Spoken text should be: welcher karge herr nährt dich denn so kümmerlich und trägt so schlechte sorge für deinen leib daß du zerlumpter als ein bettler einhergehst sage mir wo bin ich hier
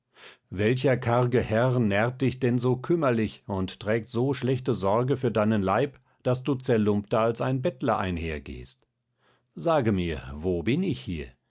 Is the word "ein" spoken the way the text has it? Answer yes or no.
yes